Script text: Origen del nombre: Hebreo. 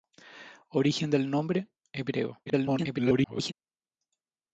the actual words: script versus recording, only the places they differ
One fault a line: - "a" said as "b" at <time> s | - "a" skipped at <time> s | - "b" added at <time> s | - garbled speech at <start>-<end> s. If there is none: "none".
- garbled speech at 2.5-3.5 s